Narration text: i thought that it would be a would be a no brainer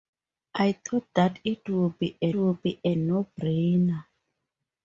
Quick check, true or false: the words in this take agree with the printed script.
true